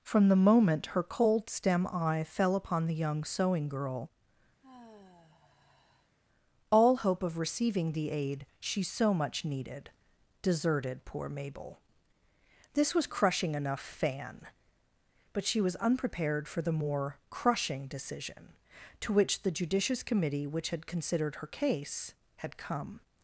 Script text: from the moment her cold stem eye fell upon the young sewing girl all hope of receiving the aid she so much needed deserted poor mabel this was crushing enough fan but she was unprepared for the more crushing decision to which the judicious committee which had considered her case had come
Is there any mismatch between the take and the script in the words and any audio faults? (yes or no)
yes